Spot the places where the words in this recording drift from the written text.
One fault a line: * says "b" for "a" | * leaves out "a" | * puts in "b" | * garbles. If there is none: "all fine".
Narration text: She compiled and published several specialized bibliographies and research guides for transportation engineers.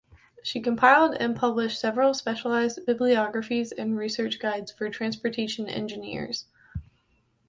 all fine